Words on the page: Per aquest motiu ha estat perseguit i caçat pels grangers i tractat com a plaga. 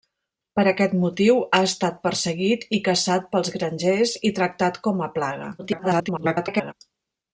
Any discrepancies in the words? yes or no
yes